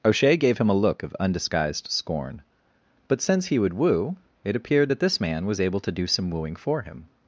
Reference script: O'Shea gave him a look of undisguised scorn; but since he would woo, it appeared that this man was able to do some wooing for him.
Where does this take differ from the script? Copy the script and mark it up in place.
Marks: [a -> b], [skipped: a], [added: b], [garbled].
O'Shea gave him a look of undisguised scorn; but since he would woo, it appeared that this man was able to do some wooing for him.